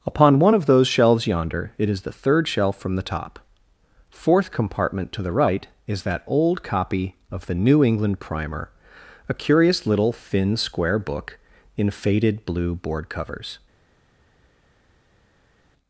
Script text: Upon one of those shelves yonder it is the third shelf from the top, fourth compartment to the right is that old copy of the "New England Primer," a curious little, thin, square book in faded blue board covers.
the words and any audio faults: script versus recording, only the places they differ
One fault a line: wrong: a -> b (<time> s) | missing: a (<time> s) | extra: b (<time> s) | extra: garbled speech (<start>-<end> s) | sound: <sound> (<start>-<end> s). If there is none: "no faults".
no faults